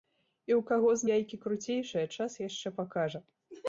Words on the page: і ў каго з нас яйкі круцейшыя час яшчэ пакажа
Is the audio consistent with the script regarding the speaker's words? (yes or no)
no